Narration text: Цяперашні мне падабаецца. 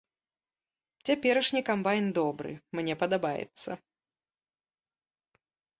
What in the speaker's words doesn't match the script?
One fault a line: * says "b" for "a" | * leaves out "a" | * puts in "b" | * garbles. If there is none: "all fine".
* puts in "камбайн добры"